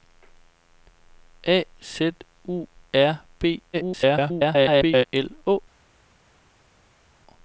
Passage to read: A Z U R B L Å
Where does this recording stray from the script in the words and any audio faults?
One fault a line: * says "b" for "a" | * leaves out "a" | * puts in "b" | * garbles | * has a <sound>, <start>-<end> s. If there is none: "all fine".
* garbles